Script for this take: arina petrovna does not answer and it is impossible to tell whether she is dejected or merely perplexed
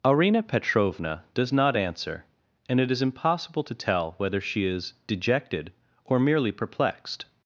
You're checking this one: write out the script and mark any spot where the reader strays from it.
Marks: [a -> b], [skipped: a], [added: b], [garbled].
arina petrovna does not answer and it is impossible to tell whether she is dejected or merely perplexed